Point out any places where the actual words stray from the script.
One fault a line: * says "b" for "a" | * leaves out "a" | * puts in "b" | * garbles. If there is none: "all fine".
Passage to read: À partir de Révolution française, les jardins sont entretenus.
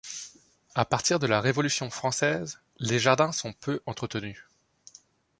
* puts in "la"
* puts in "peu"